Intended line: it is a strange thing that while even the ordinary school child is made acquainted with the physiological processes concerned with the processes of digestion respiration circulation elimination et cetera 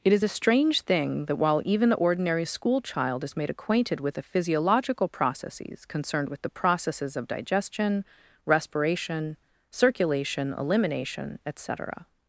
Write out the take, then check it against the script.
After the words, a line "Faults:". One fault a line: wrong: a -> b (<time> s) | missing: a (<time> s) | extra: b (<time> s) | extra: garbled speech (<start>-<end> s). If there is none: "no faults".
it is a strange thing that while even the ordinary school child is made acquainted with the physiological processes concerned with the processes of digestion respiration circulation elimination et cetera
Faults:
no faults